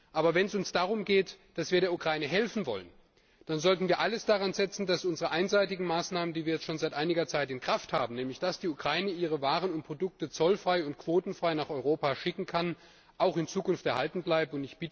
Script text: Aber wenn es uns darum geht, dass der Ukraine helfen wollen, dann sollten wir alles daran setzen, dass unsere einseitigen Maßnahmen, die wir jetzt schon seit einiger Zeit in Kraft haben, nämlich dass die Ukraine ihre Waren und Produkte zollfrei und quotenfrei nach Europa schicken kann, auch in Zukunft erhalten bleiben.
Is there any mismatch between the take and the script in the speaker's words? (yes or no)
yes